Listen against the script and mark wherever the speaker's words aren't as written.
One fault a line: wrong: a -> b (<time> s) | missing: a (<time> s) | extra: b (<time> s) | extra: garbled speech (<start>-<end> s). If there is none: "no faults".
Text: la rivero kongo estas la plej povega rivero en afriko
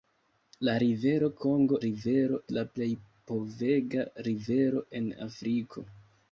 wrong: estas -> rivero (1.8 s)